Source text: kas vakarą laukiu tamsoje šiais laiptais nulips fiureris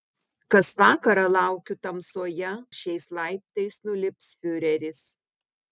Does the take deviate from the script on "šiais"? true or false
false